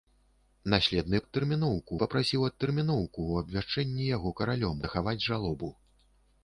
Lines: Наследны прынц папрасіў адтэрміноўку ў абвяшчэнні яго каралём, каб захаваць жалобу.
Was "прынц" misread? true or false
true